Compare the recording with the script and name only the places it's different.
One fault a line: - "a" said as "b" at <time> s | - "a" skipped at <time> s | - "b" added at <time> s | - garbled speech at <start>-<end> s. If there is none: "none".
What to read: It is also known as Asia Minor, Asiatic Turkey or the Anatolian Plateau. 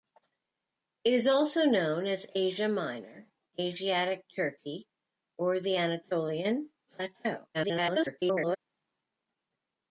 - garbled speech at 7.5-8.6 s